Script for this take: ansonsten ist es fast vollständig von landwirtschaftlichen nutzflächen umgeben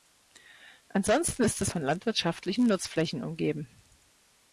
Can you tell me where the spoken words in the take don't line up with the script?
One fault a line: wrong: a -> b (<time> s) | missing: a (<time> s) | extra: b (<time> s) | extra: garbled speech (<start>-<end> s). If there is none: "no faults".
missing: fast vollständig (1.7 s)